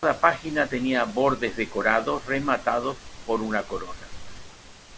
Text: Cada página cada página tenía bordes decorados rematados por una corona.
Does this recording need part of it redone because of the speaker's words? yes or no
yes